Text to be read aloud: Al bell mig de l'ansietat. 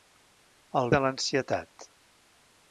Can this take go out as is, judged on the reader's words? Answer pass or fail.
fail